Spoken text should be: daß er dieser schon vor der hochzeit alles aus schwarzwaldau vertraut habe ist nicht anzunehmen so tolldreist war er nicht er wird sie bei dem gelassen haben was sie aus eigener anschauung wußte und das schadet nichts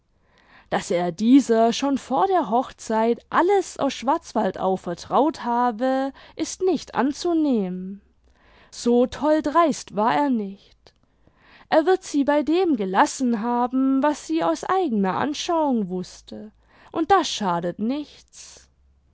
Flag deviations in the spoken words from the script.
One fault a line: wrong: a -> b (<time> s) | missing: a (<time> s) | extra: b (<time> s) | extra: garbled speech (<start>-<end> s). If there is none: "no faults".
no faults